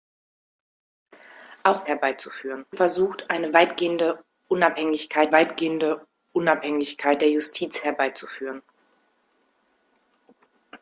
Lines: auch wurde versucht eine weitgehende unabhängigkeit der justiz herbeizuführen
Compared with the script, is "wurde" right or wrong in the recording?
wrong